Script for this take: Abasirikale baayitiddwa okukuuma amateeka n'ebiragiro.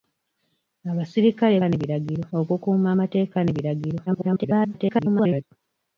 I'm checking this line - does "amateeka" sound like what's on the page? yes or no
yes